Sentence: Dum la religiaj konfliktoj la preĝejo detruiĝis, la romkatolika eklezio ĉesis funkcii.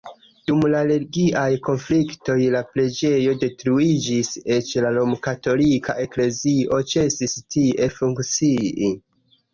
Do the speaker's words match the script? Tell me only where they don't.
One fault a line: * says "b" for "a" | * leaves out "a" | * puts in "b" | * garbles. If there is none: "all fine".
* puts in "eĉ"
* puts in "tie"